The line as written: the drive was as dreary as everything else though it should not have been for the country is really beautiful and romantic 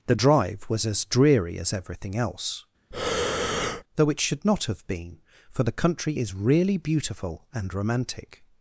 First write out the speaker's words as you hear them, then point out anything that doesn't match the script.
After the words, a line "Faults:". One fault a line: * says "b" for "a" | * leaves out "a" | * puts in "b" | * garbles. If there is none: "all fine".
the drive was as dreary as everything else though it should not have been for the country is really beautiful and romantic
Faults:
all fine